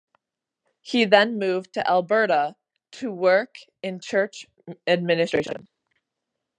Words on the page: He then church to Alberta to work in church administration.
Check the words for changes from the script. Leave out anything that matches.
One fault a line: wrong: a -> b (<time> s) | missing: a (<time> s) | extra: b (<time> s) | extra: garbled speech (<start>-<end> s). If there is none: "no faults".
wrong: church -> moved (1.4 s)